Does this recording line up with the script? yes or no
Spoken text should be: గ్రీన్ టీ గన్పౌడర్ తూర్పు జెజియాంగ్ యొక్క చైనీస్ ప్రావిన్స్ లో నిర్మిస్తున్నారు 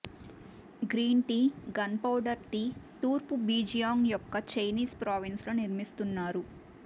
no